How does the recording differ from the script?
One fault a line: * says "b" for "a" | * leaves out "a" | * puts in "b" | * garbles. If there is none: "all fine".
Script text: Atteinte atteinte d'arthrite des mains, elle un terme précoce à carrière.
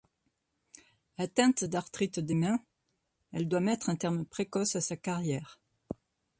* leaves out "atteinte"
* puts in "doit mettre"
* puts in "sa"